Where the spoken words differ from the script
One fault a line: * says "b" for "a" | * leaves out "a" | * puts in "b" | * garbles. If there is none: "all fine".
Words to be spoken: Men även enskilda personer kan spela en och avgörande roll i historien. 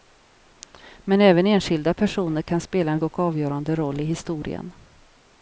all fine